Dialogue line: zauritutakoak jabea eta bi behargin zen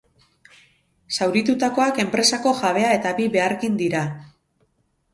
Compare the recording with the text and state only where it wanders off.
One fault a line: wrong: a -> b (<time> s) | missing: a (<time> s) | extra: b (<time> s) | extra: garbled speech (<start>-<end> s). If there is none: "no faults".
extra: enpresako (2.0 s)
wrong: zen -> dira (3.9 s)